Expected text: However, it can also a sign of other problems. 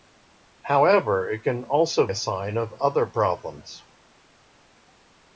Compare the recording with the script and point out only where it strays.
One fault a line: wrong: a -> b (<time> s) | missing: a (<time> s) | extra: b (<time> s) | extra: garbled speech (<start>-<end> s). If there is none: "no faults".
no faults